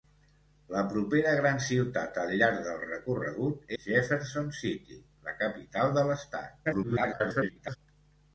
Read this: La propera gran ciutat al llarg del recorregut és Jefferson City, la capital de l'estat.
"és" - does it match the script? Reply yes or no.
no